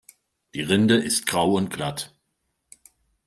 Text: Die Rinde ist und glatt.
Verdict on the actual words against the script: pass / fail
fail